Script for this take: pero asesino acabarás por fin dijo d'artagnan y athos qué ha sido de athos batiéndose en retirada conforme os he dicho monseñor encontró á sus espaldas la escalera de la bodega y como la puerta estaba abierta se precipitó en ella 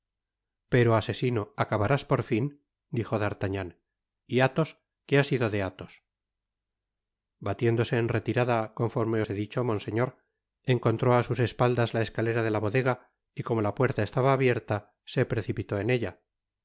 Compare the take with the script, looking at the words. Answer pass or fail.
pass